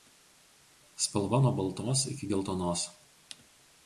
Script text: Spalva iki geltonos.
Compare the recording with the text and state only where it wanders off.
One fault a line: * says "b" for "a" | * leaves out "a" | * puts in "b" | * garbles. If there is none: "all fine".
* puts in "nuo baltos"